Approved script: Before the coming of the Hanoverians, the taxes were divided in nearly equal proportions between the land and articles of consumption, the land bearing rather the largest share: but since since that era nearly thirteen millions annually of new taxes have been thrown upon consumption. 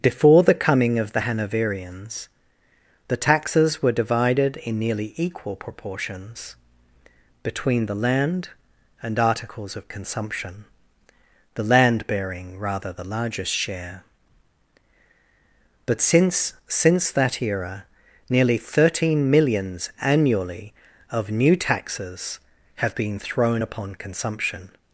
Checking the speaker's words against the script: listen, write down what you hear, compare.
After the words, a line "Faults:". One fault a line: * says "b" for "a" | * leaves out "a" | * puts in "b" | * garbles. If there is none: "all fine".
Before the coming of the Hanoverians, the taxes were divided in nearly equal proportions between the land and articles of consumption, the land bearing rather the largest share: but since since that era nearly thirteen millions annually of new taxes have been thrown upon consumption.
Faults:
all fine